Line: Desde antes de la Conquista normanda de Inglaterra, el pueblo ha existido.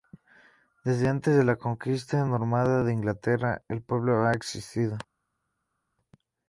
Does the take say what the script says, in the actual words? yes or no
yes